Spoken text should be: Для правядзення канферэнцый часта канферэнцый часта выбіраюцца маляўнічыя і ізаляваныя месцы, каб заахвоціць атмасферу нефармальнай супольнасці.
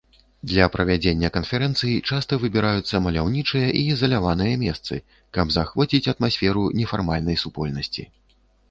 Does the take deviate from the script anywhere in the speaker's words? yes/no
yes